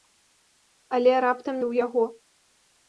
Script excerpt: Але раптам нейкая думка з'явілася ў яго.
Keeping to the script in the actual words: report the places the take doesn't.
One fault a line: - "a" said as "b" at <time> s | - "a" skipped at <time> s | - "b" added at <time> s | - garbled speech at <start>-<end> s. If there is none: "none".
- "нейкая думка з'явілася" skipped at 1.6 s